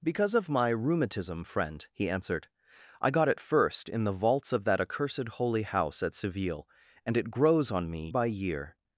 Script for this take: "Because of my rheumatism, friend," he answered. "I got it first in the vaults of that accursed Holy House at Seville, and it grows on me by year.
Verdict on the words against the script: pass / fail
pass